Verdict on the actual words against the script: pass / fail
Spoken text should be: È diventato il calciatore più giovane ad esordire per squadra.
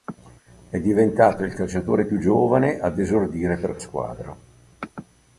pass